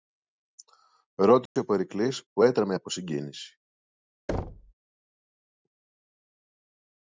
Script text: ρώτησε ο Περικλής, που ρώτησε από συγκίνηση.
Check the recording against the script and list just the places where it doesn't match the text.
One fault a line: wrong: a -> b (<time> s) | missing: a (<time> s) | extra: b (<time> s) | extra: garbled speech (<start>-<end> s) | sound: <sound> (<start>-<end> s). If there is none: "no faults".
sound: dropout (1.5-1.6 s)
wrong: ρώτησε -> έτρεμε (2.4 s)
sound: thud (4.3-4.7 s)